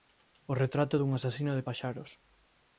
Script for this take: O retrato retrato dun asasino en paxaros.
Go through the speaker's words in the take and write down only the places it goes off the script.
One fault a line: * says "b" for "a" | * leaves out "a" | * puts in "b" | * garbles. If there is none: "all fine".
* leaves out "retrato"
* says "de" for "en"